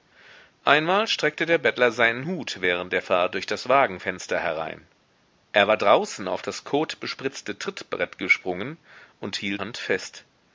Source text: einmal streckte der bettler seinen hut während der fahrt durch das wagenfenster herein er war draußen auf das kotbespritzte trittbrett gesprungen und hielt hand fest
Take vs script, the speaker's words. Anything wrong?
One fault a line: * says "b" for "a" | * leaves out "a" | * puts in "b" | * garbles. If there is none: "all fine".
all fine